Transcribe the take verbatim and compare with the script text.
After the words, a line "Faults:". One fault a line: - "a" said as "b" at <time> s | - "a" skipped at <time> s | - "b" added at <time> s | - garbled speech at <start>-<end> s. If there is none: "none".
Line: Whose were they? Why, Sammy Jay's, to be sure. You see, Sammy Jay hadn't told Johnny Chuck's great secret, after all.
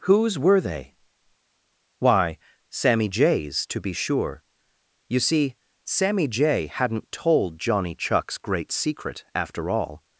Whose were they? Why, Sammy Jay's, to be sure. You see, Sammy Jay hadn't told Johnny Chuck's great secret, after all.
Faults:
none